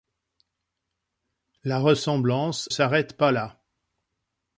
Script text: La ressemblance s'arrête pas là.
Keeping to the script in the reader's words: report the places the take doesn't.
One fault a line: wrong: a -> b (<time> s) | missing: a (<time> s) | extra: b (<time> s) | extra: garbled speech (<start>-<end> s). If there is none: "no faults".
no faults